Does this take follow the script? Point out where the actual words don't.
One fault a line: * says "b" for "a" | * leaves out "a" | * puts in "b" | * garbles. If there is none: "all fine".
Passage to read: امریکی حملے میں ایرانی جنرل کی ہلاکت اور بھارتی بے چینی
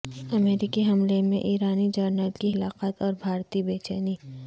all fine